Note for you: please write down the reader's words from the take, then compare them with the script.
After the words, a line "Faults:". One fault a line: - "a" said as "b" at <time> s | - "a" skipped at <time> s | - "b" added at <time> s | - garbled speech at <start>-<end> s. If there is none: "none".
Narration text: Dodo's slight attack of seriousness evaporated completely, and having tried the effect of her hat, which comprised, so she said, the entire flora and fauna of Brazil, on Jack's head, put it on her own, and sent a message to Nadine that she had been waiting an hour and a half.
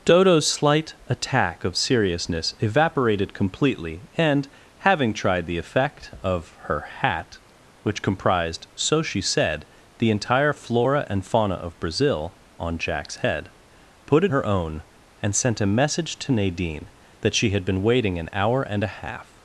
Dodo's slight attack of seriousness evaporated completely, and having tried the effect of her hat, which comprised, so she said, the entire flora and fauna of Brazil, on Jack's head, put it her own, and sent a message to Nadine that she had been waiting an hour and a half.
Faults:
- "on" skipped at 14.3 s